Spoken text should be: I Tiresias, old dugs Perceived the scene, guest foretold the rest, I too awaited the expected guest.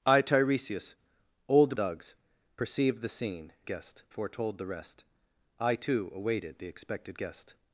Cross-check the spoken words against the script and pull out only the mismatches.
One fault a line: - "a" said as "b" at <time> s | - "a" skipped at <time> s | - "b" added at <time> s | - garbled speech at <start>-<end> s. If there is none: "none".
none